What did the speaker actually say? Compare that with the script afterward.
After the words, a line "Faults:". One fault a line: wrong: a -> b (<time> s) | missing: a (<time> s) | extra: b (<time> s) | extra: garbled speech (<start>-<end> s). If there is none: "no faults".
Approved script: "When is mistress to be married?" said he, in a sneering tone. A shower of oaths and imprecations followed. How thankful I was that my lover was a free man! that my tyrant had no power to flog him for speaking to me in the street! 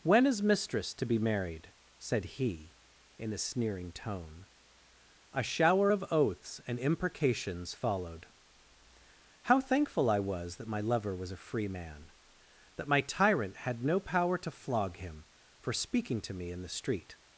"When is mistress to be married?" said he, in a sneering tone. A shower of oaths and imprecations followed. How thankful I was that my lover was a free man! that my tyrant had no power to flog him for speaking to me in the street!
Faults:
no faults